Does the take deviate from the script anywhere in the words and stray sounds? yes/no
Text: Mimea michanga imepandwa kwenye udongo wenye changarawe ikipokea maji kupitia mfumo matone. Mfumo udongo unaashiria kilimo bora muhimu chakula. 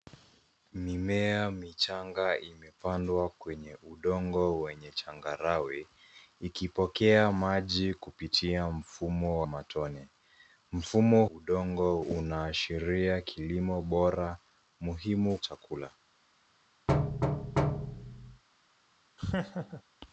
yes